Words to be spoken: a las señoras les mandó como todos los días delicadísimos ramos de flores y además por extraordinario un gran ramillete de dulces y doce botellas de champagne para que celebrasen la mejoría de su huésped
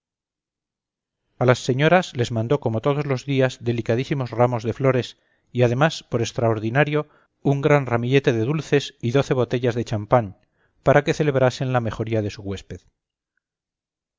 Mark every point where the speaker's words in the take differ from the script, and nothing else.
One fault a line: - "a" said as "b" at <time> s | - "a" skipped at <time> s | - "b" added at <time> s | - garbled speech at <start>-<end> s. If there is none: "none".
none